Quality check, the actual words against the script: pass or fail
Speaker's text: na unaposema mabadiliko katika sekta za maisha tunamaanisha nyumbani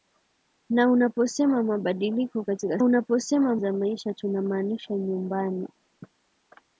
fail